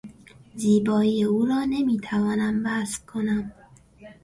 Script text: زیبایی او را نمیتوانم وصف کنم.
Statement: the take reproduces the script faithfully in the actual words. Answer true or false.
true